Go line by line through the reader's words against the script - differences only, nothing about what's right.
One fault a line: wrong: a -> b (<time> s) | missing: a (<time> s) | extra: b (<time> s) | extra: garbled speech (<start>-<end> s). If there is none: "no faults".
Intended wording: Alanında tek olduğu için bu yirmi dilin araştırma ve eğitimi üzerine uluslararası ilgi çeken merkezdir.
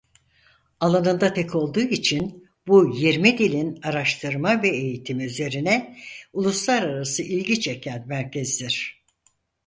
no faults